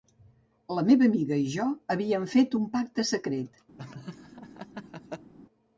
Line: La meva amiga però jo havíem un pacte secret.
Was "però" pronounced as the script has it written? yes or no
no